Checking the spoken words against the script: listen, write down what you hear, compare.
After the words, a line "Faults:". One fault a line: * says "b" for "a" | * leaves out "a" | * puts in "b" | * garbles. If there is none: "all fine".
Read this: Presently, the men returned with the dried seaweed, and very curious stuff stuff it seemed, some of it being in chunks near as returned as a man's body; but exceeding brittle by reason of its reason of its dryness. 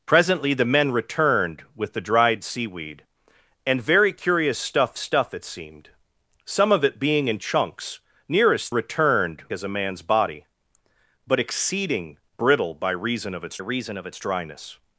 Presently, the men returned with the dried seaweed, and very curious stuff stuff it seemed, some of it being in chunks near as returned as a man's body; but exceeding brittle by reason of its reason of its dryness.
Faults:
all fine